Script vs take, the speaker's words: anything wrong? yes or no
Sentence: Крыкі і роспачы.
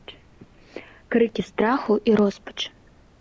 yes